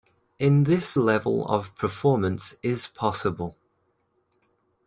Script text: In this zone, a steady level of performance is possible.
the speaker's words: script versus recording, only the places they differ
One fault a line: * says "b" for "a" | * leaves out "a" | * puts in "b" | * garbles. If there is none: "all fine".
* leaves out "zone a steady"